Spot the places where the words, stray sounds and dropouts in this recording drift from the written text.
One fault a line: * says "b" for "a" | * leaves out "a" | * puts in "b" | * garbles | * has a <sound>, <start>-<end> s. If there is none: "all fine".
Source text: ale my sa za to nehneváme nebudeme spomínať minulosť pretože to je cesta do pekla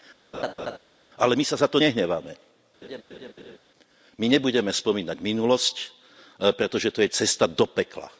* has a laugh, 0.3-0.8 s
* has a laugh, 2.8-3.6 s
* puts in "my"